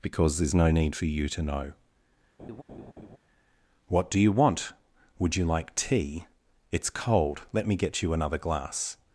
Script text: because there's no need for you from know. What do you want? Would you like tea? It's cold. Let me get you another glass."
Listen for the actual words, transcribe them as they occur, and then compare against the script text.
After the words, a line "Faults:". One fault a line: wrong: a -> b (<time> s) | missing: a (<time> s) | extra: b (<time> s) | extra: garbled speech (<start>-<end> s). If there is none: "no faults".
because there's no need for you to know. What do you want? Would you like tea? It's cold. Let me get you another glass."
Faults:
wrong: from -> to (1.3 s)